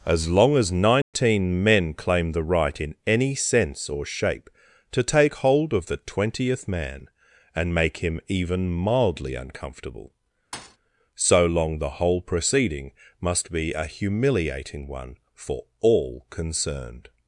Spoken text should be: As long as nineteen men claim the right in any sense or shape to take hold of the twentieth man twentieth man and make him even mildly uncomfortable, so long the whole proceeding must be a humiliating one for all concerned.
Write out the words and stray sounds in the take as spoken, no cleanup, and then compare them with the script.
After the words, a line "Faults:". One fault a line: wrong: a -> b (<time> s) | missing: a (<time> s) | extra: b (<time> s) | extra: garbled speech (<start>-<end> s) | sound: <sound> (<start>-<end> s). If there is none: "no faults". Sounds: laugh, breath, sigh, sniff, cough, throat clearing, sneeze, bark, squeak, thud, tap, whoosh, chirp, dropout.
As long as nineteen men claim the right in any sense or shape to take hold of the twentieth man and make him even mildly uncomfortable, so long the whole proceeding must be a humiliating one for all concerned.
Faults:
sound: dropout (1.0-1.1 s)
missing: twentieth man (7.1 s)
sound: thud (10.5-10.8 s)